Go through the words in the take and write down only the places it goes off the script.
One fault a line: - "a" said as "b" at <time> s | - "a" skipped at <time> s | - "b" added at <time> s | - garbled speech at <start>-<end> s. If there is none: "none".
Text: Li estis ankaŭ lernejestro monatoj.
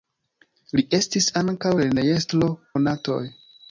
none